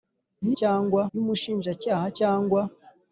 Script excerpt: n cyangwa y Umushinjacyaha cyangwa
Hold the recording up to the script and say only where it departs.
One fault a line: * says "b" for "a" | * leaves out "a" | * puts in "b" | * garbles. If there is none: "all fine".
all fine